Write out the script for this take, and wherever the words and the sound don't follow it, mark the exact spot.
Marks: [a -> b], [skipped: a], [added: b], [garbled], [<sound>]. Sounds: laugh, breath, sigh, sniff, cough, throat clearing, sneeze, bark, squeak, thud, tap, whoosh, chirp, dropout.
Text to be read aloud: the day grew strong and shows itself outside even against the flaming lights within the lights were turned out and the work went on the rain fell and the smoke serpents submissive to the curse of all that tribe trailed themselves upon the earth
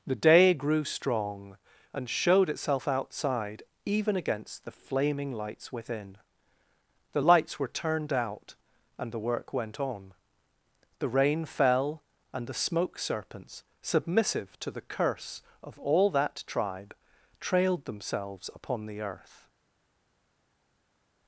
the day grew strong and [shows -> showed] itself outside even against the flaming lights within the lights were turned out and the work went on the rain fell and the smoke serpents submissive to the curse of all that tribe trailed themselves upon the earth